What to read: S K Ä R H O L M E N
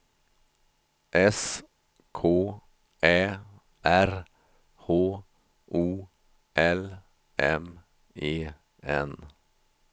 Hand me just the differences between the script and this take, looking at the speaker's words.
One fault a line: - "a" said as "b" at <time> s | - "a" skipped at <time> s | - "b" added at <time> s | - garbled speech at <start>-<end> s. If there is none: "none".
none